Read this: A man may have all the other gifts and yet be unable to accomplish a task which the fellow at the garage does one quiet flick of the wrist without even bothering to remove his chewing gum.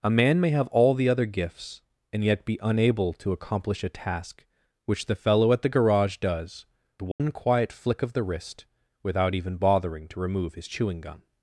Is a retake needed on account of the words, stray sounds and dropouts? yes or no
yes